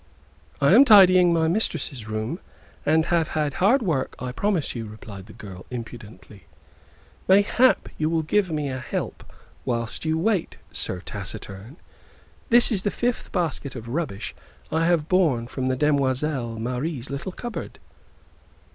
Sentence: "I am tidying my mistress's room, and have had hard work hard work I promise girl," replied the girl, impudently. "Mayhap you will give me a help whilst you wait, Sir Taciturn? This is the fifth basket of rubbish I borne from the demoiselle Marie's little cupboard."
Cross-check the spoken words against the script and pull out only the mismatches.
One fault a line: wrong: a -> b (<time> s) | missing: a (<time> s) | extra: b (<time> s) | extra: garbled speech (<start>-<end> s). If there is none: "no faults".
missing: hard work (4.2 s)
wrong: girl -> you (4.7 s)
extra: have (14.9 s)